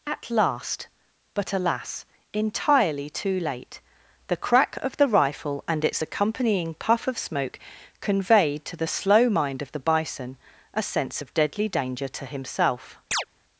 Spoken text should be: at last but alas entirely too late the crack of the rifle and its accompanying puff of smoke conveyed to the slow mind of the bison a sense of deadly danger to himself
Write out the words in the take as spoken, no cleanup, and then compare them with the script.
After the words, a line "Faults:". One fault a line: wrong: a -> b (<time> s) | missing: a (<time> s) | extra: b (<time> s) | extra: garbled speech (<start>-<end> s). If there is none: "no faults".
at last but alas entirely too late the crack of the rifle and its accompanying puff of smoke conveyed to the slow mind of the bison a sense of deadly danger to himself
Faults:
no faults